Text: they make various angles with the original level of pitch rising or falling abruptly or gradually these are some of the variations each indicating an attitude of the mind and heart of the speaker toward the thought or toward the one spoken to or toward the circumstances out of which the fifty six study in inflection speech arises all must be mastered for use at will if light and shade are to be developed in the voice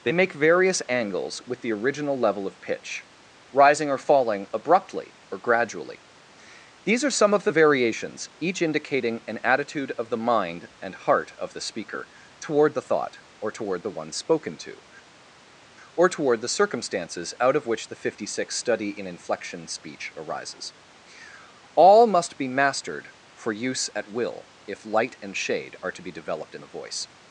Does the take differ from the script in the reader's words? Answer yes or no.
no